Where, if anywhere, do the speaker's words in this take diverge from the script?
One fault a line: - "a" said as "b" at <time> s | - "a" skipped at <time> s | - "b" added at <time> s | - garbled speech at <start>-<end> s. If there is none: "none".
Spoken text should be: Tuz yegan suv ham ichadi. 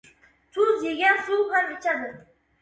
none